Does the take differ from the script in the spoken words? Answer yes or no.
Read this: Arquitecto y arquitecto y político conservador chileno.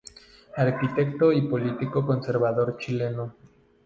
yes